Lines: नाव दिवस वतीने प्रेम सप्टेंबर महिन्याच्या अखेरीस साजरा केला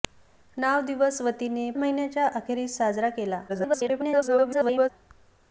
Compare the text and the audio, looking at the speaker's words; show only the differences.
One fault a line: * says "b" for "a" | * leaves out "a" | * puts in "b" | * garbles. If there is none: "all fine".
* leaves out "प्रेम सप्टेंबर"
* garbles